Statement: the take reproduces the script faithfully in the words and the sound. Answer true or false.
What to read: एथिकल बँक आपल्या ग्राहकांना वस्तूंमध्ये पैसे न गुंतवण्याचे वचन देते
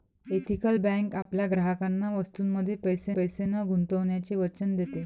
false